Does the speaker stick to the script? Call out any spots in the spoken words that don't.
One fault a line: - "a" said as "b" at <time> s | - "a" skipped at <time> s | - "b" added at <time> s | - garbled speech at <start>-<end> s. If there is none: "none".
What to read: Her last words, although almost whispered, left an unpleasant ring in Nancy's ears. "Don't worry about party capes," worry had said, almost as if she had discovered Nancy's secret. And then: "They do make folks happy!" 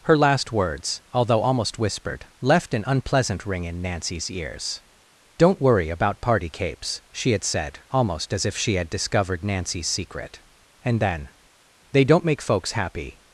- "worry" said as "she" at 7.1 s
- "do" said as "don't" at 12.1 s